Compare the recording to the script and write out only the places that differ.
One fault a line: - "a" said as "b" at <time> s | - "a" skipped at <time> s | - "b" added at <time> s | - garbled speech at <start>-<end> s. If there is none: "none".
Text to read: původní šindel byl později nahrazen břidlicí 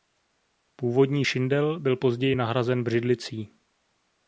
none